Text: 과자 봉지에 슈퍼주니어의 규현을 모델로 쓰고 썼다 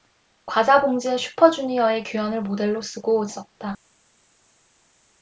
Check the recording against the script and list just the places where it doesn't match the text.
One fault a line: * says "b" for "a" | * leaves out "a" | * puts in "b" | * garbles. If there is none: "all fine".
all fine